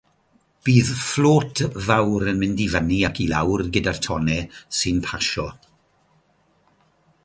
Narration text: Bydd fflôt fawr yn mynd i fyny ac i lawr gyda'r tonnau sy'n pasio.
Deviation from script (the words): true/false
false